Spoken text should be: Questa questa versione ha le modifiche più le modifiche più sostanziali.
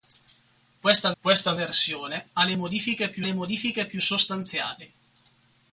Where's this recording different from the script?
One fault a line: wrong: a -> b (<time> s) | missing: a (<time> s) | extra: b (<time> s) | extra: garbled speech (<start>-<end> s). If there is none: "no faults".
no faults